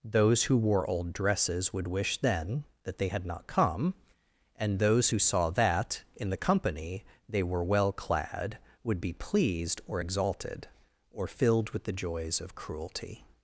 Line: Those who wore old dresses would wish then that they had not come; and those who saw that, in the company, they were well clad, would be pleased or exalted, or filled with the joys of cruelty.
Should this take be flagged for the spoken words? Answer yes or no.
no